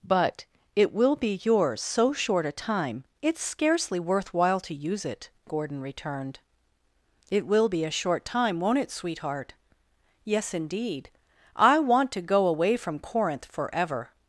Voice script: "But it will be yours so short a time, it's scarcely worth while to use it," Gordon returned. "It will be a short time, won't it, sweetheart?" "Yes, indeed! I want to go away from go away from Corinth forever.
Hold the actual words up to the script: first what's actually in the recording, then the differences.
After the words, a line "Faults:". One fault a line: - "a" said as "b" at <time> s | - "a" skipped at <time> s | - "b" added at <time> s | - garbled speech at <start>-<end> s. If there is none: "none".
"But it will be yours so short a time, it's scarcely worth while to use it," Gordon returned. "It will be a short time, won't it, sweetheart?" "Yes, indeed! I want to go away from Corinth forever.
Faults:
- "go away from" skipped at 13.0 s